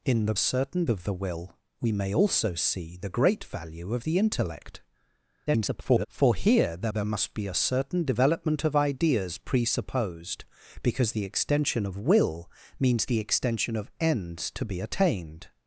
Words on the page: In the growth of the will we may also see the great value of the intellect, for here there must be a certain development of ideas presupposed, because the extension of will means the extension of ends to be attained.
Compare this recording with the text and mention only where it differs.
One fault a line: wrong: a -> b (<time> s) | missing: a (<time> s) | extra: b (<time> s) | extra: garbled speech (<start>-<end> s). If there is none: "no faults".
wrong: growth -> certain (0.4 s)
extra: garbled speech (5.5-6.1 s)
extra: there (6.9 s)